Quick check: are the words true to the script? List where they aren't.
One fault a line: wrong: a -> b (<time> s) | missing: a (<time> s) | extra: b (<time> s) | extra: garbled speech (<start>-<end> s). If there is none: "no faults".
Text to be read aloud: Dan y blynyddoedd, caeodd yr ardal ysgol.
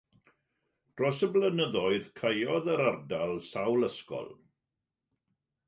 wrong: Dan -> Dros (1.0 s)
extra: sawl (3.5 s)